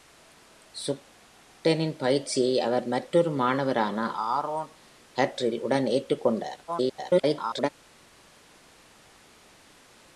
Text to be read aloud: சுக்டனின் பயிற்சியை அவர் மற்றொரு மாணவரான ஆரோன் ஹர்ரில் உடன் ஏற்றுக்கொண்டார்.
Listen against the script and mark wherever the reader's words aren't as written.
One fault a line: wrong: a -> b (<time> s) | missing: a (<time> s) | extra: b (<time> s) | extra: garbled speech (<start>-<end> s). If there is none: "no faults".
extra: garbled speech (6.7-7.7 s)